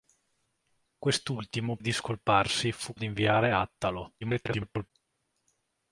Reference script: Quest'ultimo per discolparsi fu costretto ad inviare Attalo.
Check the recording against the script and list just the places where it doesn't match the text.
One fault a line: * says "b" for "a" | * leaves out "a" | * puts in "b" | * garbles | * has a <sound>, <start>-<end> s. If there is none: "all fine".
* leaves out "per"
* leaves out "costretto"
* garbles